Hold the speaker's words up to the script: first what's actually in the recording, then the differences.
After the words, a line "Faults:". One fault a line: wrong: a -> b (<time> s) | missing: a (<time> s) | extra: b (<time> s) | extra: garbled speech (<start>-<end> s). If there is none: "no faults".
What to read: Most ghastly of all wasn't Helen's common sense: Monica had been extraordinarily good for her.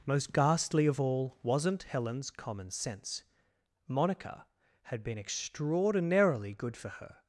Most ghastly of all wasn't Helen's common sense: Monica had been extraordinarily good for her.
Faults:
no faults